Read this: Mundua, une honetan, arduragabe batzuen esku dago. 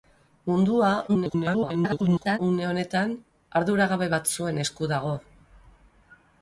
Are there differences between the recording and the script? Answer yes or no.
yes